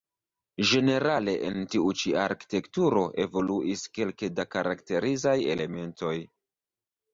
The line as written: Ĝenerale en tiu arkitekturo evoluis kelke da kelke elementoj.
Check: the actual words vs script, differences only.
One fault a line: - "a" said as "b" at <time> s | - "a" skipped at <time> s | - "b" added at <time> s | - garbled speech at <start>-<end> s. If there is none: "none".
- "ĉi" added at 2.0 s
- "kelke" said as "karakterizaj" at 4.6 s